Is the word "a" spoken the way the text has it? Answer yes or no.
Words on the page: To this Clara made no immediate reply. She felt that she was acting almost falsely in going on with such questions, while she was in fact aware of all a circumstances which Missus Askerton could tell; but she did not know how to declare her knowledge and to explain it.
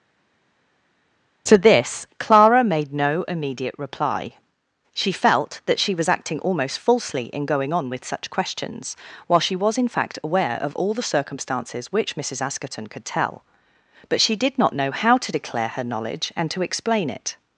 no